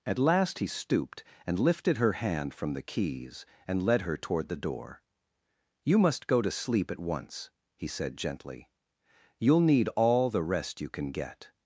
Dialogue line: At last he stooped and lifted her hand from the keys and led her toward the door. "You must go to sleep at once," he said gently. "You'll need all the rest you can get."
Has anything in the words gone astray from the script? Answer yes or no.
no